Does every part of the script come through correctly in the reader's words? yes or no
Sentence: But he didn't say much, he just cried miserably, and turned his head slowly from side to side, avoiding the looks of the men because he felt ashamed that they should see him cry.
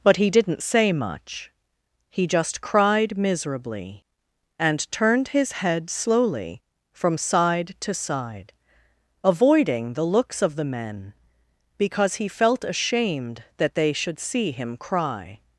yes